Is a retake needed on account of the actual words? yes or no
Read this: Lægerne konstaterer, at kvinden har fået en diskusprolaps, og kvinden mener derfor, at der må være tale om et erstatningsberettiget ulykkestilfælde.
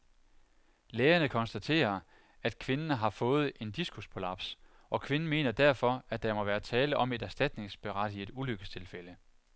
no